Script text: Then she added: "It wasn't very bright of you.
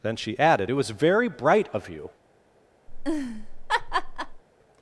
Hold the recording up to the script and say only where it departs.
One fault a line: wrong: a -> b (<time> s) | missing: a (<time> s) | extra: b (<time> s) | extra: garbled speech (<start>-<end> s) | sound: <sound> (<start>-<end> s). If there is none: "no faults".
wrong: wasn't -> was (0.8 s)
sound: laugh (2.9-4.4 s)